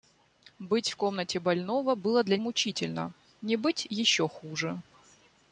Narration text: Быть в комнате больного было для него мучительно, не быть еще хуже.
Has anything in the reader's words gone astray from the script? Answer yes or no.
yes